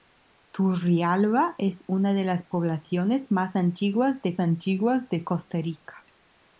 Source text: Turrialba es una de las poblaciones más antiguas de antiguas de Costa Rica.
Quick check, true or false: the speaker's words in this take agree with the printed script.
true